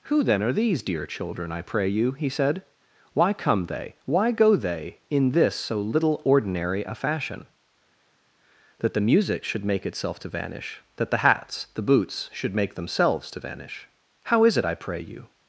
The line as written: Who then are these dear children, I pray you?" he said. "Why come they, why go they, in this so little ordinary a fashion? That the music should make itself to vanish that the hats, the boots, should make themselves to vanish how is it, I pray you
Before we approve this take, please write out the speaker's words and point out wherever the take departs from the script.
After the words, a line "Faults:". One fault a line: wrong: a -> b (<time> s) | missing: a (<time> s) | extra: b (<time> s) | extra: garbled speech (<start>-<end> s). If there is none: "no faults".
Who then are these dear children, I pray you?" he said. "Why come they, why go they, in this so little ordinary a fashion? That the music should make itself to vanish that the hats, the boots, should make themselves to vanish how is it, I pray you
Faults:
no faults